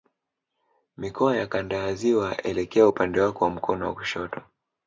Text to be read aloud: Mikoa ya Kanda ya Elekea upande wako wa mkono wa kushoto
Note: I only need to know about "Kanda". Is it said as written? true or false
true